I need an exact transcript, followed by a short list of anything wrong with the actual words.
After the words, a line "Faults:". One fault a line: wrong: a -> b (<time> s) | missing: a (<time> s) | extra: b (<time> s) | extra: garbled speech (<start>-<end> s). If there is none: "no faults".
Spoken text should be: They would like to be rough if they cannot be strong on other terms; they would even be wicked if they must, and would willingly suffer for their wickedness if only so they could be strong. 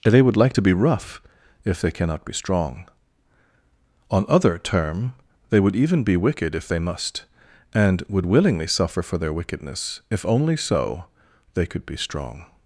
They would like to be rough if they cannot be strong on other term; they would even be wicked if they must, and would willingly suffer for their wickedness if only so they could be strong.
Faults:
wrong: terms -> term (4.6 s)